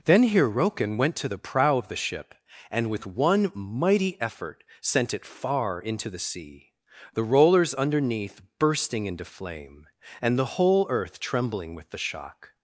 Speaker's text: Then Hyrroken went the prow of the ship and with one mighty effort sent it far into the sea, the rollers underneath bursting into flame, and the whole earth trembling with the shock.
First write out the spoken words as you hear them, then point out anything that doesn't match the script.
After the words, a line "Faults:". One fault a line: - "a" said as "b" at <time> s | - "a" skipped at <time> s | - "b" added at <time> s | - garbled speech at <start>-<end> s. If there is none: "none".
Then Hyrroken went to the prow of the ship and with one mighty effort sent it far into the sea, the rollers underneath bursting into flame, and the whole earth trembling with the shock.
Faults:
- "to" added at 1.2 s